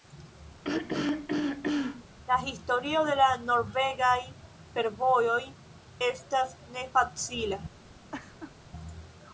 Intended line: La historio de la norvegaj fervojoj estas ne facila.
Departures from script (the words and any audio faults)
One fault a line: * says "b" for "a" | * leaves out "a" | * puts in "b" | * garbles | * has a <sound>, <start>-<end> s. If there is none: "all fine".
* has a throat clearing, 0.6-2.0 s
* has a laugh, 8.1-8.5 s